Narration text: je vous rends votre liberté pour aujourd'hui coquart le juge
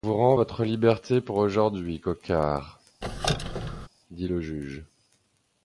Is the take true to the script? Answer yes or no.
no